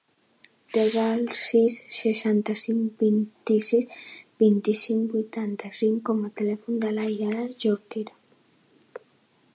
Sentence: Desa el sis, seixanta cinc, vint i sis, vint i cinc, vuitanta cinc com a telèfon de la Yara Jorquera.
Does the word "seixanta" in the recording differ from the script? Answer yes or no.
no